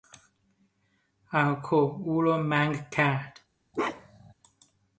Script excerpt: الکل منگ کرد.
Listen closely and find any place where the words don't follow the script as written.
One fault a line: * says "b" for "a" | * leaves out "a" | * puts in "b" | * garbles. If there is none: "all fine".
* puts in "او را"